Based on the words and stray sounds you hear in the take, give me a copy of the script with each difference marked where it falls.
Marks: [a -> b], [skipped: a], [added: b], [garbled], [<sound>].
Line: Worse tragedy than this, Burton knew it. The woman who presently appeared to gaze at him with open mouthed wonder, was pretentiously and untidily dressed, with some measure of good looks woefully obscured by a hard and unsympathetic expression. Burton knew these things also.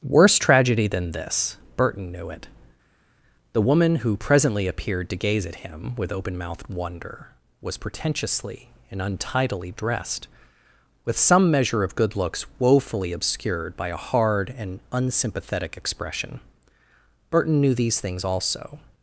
Worse tragedy than this, Burton knew it. The woman who presently appeared to gaze at him with open mouthed wonder, was pretentiously and untidily dressed, with some measure of good looks woefully obscured by a hard and unsympathetic expression. Burton knew these things also.